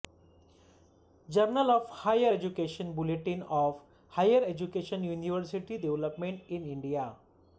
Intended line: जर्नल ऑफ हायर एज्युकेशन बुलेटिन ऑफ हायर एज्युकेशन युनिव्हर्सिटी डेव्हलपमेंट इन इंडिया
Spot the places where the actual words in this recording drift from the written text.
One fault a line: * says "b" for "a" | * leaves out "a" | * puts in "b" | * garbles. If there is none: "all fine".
all fine